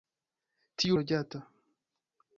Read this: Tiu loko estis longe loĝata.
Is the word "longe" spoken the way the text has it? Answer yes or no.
no